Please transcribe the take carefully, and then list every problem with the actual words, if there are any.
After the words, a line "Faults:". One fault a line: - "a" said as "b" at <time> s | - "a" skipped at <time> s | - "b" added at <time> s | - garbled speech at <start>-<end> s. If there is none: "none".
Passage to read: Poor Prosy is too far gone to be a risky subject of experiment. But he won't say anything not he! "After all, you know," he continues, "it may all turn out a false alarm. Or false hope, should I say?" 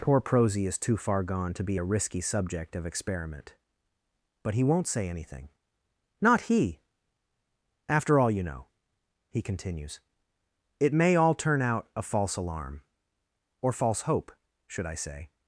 Poor Prosy is too far gone to be a risky subject of experiment. But he won't say anything not he! "After all, you know," he continues, "it may all turn out a false alarm. Or false hope, should I say?"
Faults:
none